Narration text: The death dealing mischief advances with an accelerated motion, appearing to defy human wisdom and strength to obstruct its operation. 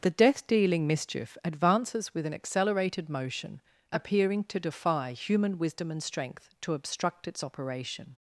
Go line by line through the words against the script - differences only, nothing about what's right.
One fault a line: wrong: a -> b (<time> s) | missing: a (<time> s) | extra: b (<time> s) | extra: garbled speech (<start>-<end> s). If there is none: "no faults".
no faults